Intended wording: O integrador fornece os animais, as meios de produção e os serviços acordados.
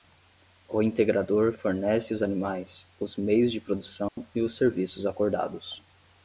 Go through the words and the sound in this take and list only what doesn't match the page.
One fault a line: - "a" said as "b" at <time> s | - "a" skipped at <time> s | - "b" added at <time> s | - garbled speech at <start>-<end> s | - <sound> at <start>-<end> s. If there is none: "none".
- "as" said as "os" at 3.0 s
- dropout at 4.1-4.2 s